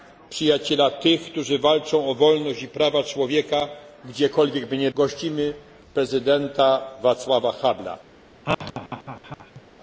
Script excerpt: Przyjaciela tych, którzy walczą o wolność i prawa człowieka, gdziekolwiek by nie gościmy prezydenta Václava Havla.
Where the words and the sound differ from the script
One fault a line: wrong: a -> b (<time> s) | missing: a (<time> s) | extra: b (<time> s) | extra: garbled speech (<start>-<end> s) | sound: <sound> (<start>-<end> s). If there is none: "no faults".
sound: laugh (8.4-9.6 s)